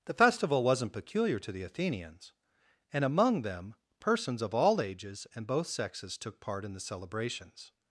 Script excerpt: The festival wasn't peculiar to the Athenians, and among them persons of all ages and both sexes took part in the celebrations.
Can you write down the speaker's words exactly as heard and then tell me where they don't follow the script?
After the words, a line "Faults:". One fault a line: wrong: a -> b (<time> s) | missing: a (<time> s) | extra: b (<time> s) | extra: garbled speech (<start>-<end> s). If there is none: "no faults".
The festival wasn't peculiar to the Athenians, and among them persons of all ages and both sexes took part in the celebrations.
Faults:
no faults